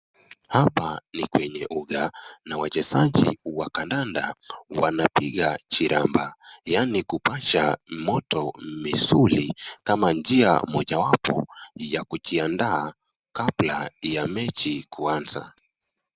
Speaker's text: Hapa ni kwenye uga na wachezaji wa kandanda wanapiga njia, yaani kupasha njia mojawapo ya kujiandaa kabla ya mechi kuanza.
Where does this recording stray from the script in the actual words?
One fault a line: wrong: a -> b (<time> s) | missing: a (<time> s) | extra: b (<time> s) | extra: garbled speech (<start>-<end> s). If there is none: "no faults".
wrong: njia -> chiramba (5.7 s)
extra: moto misuli kama (7.9 s)